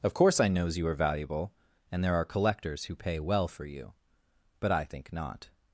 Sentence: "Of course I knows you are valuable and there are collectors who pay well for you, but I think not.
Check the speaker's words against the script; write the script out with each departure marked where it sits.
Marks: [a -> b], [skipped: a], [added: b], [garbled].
"Of course I knows you are valuable and there are collectors who pay well for you, but I think not.